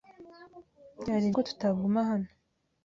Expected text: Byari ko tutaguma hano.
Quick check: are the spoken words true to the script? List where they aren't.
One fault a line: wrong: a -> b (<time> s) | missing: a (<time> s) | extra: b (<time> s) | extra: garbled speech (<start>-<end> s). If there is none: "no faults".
no faults